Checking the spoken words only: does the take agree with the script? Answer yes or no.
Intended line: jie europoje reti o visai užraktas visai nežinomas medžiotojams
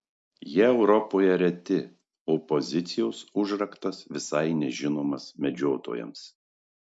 no